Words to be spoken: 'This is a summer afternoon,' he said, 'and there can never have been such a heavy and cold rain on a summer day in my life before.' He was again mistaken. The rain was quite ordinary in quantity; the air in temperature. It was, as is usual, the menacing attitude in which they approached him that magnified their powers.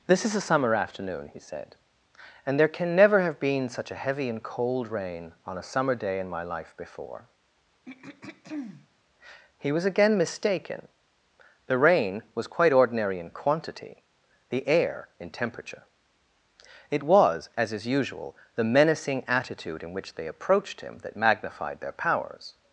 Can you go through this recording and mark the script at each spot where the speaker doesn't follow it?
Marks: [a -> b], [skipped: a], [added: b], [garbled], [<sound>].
'This is a summer afternoon,' he said, 'and there can never have been such a heavy and cold rain on a summer day in my life before.' [throat clearing] He was again mistaken. The rain was quite ordinary in quantity; the air in temperature. It was, as is usual, the menacing attitude in which they approached him that magnified their powers.